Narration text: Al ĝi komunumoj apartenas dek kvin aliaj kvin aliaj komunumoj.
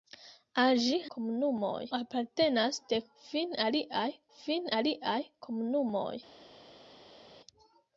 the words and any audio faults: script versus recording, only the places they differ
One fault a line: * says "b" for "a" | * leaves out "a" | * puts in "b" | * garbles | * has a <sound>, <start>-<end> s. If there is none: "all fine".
all fine